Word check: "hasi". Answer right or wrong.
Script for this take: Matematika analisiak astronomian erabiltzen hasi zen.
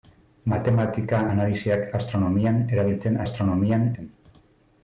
wrong